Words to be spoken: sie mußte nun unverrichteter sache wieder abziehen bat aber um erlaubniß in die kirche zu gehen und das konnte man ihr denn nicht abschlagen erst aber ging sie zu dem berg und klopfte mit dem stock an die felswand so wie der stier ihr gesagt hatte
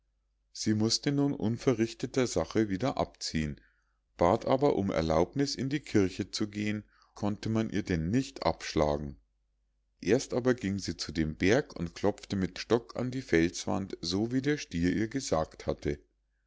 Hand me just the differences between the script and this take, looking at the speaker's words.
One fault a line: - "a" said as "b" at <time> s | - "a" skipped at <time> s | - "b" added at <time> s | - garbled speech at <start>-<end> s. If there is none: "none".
- "und das" skipped at 6.8 s
- "dem" skipped at 12.6 s